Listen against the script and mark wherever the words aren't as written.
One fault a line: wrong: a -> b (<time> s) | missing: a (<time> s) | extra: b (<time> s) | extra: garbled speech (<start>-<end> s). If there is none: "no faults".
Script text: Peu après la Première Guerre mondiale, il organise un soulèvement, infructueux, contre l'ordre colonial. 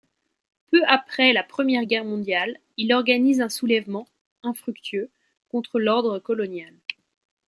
no faults